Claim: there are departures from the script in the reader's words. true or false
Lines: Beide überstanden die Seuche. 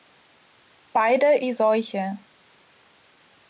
true